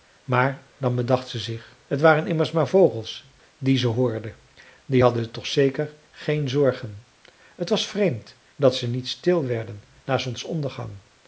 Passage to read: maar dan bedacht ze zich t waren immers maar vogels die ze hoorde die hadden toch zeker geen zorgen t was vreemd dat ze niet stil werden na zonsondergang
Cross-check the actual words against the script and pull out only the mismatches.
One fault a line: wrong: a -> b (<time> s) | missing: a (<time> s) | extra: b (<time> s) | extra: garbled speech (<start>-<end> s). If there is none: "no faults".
no faults